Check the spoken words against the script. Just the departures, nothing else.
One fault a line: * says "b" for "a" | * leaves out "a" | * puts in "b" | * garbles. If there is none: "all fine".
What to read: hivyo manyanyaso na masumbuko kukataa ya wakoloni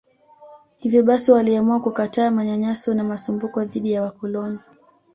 * puts in "basi waliamua kukataa"
* says "dhidi" for "kukataa"